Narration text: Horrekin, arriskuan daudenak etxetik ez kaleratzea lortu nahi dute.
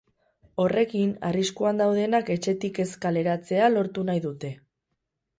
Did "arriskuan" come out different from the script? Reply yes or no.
no